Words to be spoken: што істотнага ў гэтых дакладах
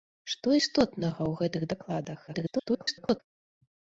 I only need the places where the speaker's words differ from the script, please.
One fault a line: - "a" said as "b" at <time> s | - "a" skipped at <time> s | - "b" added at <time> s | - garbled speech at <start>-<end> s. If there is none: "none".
- garbled speech at 2.3-3.2 s